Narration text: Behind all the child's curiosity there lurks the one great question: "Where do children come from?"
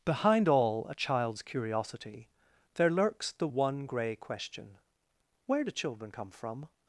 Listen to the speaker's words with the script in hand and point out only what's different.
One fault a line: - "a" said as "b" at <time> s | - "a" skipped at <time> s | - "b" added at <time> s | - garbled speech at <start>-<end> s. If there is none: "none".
- "the" said as "a" at 0.9 s
- "great" said as "grey" at 3.8 s